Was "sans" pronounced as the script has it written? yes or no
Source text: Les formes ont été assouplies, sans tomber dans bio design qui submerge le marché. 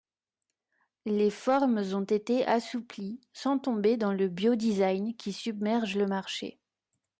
yes